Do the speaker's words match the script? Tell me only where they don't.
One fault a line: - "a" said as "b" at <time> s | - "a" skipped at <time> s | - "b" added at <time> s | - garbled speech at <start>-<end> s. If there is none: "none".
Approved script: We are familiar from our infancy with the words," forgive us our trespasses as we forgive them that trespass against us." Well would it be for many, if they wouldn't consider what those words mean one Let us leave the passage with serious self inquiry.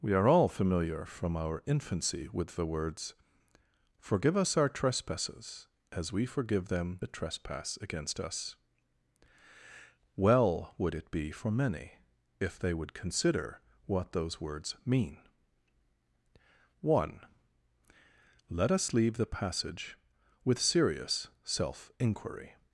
- "all" added at 0.3 s
- "wouldn't" said as "would" at 12.7 s